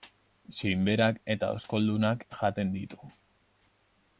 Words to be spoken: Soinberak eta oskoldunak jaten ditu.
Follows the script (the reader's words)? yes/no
yes